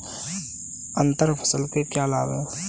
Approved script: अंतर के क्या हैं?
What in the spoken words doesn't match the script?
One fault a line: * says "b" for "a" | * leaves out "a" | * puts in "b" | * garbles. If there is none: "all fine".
* puts in "फसल"
* puts in "लाभ"